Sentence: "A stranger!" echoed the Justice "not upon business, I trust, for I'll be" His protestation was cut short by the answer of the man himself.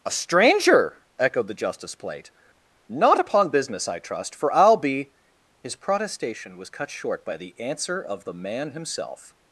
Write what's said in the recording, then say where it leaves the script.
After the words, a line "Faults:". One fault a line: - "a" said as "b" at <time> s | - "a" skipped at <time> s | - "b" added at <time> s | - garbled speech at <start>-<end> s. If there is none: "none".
"A stranger!" echoed the Justice plate "not upon business, I trust, for I'll be" His protestation was cut short by the answer of the man himself.
Faults:
- "plate" added at 1.9 s